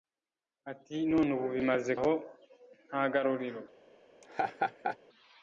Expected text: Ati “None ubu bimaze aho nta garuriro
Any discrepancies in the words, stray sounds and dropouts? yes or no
yes